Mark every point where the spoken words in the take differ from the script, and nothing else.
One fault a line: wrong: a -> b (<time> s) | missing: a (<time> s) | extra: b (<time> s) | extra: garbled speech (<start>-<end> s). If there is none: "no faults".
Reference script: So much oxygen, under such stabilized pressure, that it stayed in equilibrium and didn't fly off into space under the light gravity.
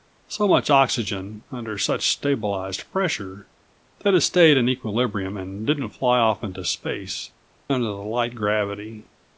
no faults